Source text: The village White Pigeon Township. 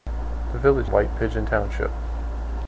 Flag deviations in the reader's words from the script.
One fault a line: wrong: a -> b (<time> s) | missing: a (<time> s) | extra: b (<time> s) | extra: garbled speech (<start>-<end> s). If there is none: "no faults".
no faults